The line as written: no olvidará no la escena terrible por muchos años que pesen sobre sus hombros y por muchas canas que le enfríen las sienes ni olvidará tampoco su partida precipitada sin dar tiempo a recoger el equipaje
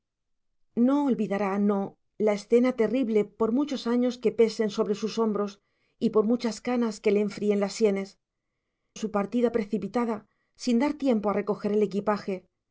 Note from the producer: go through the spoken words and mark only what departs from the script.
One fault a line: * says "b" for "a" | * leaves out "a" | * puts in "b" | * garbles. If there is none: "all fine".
* leaves out "ni olvidará tampoco"